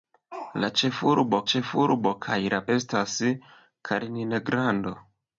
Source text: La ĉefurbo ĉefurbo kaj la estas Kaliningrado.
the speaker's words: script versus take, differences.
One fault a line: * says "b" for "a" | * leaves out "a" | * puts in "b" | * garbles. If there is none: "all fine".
all fine